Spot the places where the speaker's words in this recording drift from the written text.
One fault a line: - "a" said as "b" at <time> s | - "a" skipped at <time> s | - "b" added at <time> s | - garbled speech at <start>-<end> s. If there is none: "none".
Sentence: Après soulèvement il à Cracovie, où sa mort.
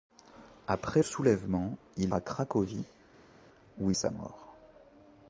none